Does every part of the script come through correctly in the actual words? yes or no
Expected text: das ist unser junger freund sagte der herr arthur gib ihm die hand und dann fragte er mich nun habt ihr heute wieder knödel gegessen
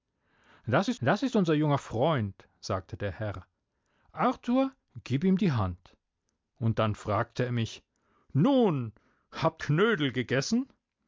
no